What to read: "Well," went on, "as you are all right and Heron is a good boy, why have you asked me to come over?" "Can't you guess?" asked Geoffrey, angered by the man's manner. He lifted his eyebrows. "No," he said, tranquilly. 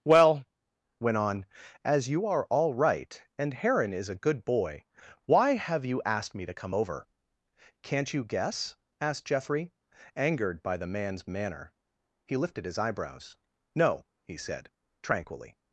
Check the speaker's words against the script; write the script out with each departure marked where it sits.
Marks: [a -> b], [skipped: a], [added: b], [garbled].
"Well," went on, "as you are all right and Heron is a good boy, why have you asked me to come over?" "Can't you guess?" asked Geoffrey, angered by the man's manner. He lifted his eyebrows. "No," he said, tranquilly.